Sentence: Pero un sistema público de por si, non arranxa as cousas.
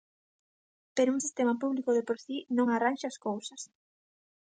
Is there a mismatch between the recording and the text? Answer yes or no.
no